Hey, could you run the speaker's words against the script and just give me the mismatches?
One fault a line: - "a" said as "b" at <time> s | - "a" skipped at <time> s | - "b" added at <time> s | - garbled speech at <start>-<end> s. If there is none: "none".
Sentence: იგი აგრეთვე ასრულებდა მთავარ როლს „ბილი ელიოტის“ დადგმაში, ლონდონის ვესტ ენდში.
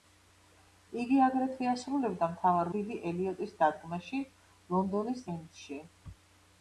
- "როლს" skipped at 2.7 s
- "ვესტ" skipped at 5.2 s